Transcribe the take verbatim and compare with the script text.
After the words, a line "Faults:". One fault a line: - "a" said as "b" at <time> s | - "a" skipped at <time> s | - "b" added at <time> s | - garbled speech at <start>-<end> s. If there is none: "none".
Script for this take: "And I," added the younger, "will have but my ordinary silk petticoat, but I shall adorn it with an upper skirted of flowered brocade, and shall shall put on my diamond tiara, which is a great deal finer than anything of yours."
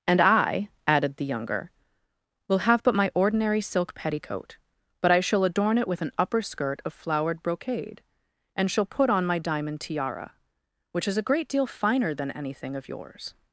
"And I," added the younger, "will have but my ordinary silk petticoat, but I shall adorn it with an upper skirt of flowered brocade, and shall put on my diamond tiara, which is a great deal finer than anything of yours."
Faults:
- "skirted" said as "skirt" at 6.4 s
- "shall" skipped at 8.9 s